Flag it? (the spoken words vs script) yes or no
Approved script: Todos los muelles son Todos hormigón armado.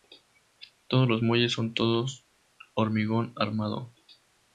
no